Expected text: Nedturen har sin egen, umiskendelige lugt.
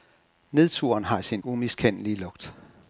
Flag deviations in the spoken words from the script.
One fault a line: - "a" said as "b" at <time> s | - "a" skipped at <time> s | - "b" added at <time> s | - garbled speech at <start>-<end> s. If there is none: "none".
- "egen" skipped at 1.4 s